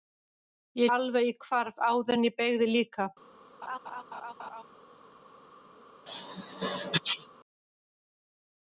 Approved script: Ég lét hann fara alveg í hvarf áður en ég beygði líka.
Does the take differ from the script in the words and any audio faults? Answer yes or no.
yes